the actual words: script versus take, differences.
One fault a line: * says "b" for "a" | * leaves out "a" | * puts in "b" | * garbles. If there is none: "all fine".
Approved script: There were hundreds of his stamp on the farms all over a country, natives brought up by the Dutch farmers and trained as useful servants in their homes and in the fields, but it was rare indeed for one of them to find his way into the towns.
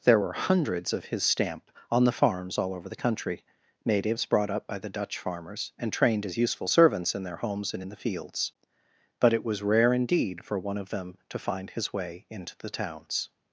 * says "the" for "a"